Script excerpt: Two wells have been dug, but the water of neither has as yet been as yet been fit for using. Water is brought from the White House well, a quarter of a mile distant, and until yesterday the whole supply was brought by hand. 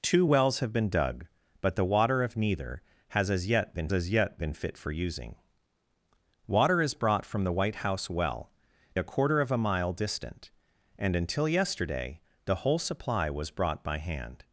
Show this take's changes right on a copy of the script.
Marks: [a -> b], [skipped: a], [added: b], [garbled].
Two wells have been dug, but the water of neither has as yet been as yet been fit for using. Water is brought from the White House well, a quarter of a mile distant, and until yesterday the whole supply was brought by hand.